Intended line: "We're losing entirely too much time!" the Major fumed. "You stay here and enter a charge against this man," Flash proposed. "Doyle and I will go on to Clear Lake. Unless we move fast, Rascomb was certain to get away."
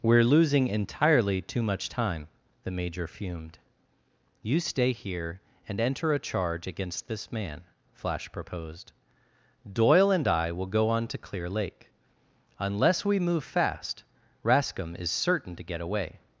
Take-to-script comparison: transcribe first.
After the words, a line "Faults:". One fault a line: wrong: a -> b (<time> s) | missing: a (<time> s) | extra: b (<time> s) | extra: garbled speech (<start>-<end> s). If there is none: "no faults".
"We're losing entirely too much time!" the Major fumed. "You stay here and enter a charge against this man," Flash proposed. "Doyle and I will go on to Clear Lake. Unless we move fast, Rascomb is certain to get away."
Faults:
wrong: was -> is (15.0 s)